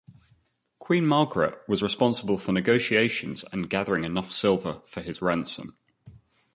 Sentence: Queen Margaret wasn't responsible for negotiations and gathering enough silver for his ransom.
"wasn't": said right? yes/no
no